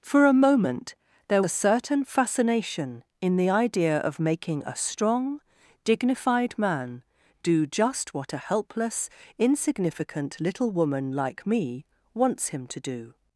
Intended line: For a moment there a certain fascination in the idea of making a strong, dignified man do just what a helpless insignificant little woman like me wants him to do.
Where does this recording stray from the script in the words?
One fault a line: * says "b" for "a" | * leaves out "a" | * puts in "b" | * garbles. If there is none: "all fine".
all fine